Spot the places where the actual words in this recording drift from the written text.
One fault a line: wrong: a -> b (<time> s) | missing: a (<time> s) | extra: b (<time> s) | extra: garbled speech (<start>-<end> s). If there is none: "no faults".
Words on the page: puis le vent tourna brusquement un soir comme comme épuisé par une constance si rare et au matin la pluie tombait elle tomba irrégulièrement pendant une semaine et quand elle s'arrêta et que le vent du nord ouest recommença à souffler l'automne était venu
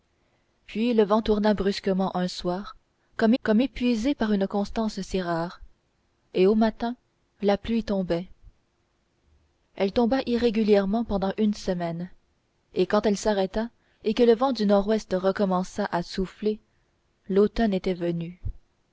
no faults